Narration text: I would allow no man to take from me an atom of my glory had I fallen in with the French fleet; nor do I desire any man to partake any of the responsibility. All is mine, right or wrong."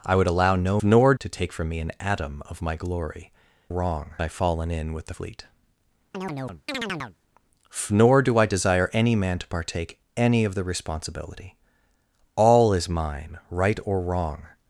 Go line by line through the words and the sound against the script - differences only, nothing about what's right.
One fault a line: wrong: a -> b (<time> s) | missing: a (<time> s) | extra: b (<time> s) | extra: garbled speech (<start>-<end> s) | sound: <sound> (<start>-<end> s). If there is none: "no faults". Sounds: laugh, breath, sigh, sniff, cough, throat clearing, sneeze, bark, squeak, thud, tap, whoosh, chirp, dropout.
wrong: man -> nor (0.8 s)
wrong: had -> wrong (3.7 s)
missing: French (5.1 s)
sound: chirp (6.1-7.2 s)